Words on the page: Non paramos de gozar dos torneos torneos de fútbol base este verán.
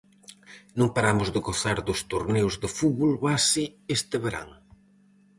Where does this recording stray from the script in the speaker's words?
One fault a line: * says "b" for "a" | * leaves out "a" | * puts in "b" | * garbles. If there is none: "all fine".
* leaves out "torneos"